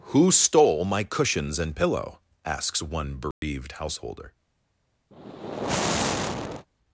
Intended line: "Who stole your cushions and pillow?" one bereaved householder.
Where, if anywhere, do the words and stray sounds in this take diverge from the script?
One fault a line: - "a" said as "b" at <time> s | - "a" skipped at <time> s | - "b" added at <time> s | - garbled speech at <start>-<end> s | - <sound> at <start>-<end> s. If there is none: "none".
- "your" said as "my" at 0.8 s
- "asks" added at 2.5 s
- dropout at 3.3-3.4 s
- sigh at 5.1-6.7 s